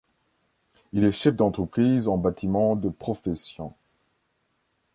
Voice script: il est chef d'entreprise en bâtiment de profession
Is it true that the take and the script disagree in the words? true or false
false